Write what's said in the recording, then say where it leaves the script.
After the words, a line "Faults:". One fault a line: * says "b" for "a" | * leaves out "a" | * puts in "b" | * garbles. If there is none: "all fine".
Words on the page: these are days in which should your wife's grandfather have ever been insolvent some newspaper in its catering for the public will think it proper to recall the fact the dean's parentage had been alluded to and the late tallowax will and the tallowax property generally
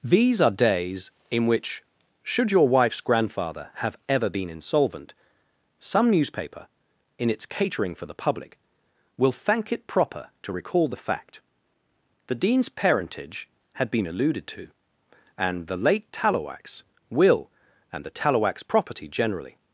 these are days in which should your wife's grandfather have ever been insolvent some newspaper in its catering for the public will thank it proper to recall the fact the dean's parentage had been alluded to and the late tallowax will and the tallowax property generally
Faults:
* says "thank" for "think"